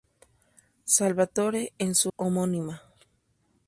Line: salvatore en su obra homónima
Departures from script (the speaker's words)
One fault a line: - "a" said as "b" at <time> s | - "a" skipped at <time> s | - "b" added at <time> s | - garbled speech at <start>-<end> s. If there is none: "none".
- "obra" skipped at 2.1 s